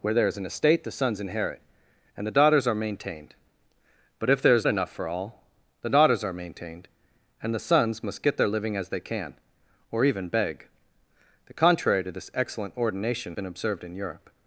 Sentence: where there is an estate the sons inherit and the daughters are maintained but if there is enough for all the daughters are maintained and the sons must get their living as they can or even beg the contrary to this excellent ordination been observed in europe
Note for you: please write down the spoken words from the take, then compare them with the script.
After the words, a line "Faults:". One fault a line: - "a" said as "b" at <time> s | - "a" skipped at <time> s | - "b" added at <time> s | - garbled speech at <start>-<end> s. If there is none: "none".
where there is an estate the sons inherit and the daughters are maintained but if there is enough for all the daughters are maintained and the sons must get their living as they can or even beg the contrary to this excellent ordination been observed in europe
Faults:
none